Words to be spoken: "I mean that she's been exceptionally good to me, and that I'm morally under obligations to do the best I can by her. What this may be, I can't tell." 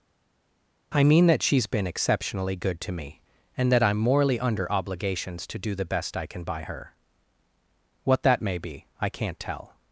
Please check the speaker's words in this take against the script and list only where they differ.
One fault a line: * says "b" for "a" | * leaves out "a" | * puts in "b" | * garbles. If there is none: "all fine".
* says "that" for "this"